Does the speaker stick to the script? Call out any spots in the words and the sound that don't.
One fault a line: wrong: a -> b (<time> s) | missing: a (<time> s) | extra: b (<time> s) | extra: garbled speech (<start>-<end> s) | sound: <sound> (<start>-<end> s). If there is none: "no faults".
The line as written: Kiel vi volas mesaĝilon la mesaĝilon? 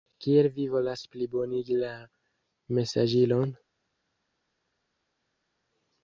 wrong: mesaĝilon -> plibonigi (1.1 s)